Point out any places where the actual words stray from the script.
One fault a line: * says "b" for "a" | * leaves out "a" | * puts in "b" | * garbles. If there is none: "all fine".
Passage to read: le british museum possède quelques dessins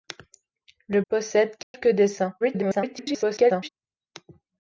* leaves out "british museum"
* garbles